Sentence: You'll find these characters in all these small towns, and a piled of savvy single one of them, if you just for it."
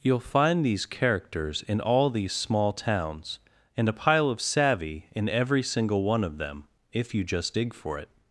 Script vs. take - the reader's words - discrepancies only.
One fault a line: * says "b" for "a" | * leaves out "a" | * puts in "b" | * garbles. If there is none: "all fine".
* says "pile" for "piled"
* puts in "in every"
* puts in "dig"